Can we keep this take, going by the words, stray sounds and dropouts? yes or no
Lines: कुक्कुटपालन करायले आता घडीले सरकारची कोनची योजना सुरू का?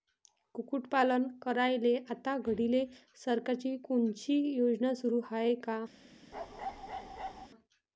no